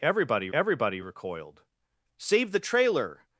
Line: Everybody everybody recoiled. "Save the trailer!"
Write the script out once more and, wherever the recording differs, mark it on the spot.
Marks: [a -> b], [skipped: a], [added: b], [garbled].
Everybody everybody recoiled. "Save the trailer!"